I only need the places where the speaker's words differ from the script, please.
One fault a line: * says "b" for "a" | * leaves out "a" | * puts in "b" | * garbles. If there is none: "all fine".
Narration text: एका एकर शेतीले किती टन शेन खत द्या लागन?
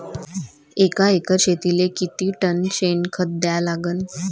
all fine